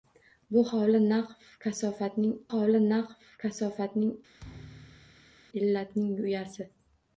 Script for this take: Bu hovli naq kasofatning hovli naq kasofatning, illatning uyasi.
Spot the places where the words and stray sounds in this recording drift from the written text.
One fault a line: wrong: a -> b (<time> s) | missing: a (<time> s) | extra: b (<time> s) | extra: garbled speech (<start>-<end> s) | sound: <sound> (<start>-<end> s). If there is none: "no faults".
sound: thud (4.4-5.4 s)